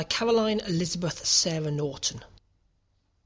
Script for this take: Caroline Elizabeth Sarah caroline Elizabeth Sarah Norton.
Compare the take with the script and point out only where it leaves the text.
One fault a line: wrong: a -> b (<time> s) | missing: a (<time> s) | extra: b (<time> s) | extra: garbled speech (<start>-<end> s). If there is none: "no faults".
missing: caroline Elizabeth Sarah (1.7 s)